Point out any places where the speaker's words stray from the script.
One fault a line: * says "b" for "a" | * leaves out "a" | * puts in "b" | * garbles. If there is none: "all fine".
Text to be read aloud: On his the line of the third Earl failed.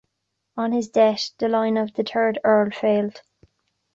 * puts in "death"